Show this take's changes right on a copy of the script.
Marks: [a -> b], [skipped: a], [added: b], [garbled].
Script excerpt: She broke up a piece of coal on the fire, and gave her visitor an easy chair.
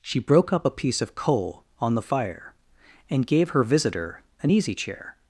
She broke up a piece of coal on the fire, and gave her visitor an easy chair.